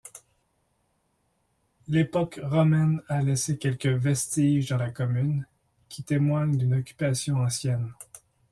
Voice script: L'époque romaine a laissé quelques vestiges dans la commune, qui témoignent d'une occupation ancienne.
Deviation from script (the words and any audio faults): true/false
false